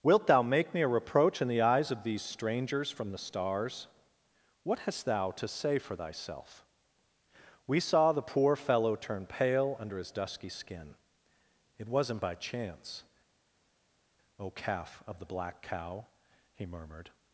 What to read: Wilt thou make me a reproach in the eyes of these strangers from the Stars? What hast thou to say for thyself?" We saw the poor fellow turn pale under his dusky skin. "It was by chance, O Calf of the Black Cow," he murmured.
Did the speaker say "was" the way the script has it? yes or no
no